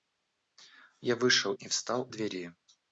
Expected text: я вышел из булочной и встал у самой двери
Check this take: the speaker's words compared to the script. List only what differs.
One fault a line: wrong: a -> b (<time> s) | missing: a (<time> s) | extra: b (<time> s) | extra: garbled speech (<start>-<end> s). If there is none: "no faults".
missing: из булочной (1.5 s)
missing: самой (2.1 s)